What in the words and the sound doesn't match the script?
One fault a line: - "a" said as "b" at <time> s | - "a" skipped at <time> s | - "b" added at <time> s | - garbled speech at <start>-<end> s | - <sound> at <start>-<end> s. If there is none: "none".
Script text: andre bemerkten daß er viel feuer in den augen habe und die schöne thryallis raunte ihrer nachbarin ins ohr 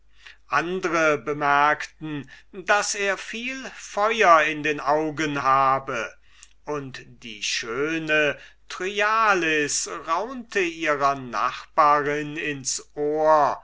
none